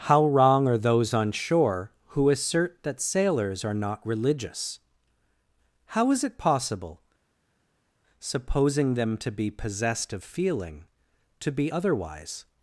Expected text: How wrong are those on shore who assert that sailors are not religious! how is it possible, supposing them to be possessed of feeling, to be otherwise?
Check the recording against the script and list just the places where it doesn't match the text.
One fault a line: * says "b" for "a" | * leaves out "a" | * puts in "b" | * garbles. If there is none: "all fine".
all fine